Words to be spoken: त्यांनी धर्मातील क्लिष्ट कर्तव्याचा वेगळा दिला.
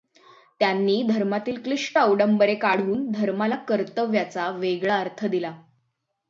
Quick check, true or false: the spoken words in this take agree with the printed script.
false